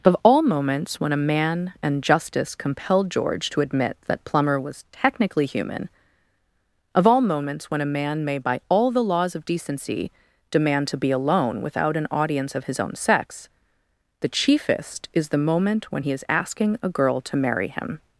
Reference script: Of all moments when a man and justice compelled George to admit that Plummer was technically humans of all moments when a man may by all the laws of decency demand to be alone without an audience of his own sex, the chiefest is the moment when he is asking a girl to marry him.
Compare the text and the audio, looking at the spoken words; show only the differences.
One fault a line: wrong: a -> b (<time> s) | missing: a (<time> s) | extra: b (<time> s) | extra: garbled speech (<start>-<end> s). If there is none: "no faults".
wrong: humans -> human (5.5 s)